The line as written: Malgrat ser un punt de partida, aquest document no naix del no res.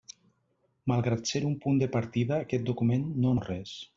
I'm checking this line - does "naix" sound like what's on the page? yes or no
no